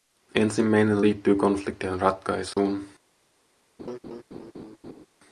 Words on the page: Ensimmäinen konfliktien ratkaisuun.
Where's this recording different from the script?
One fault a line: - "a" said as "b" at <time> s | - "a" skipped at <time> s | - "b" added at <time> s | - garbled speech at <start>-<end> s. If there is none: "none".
- "liittyy" added at 1.0 s